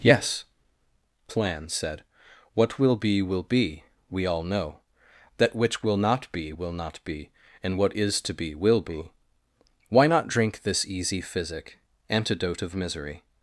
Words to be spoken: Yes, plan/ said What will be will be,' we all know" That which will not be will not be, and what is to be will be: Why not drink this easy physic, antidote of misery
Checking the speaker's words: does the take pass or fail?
pass